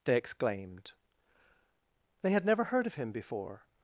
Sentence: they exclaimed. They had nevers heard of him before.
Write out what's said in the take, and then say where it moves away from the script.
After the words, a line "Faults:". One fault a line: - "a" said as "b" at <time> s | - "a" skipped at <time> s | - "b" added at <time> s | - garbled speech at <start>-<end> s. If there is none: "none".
they exclaimed. They had never heard of him before.
Faults:
- "nevers" said as "never" at 2.5 s